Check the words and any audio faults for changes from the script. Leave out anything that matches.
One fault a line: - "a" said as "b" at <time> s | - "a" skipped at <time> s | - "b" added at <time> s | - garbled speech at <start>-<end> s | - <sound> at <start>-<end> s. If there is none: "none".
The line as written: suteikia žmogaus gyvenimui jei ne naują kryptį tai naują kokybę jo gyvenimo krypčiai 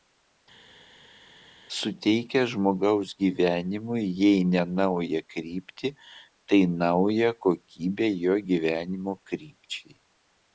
none